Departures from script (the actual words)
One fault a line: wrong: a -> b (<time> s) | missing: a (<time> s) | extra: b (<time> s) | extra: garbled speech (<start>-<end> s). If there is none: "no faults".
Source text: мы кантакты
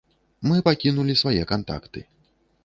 extra: пакінулі свае (0.7 s)